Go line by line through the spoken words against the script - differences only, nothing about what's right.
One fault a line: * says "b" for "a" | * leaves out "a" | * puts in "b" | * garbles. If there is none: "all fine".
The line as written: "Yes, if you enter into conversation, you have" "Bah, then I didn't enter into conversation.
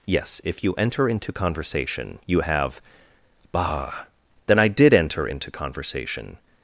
* says "did" for "didn't"